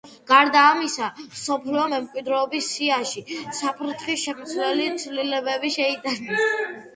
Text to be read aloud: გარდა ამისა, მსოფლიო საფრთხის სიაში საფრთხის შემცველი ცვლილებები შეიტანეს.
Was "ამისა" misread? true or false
false